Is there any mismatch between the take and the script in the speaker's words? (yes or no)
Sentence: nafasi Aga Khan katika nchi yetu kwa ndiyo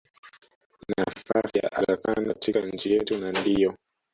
yes